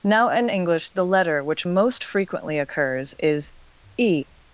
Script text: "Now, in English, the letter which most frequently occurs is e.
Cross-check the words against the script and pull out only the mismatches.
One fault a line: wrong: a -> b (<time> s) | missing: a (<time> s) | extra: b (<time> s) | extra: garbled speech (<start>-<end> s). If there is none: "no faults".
no faults